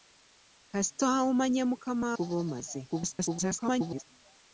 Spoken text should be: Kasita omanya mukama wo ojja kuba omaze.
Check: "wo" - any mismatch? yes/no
yes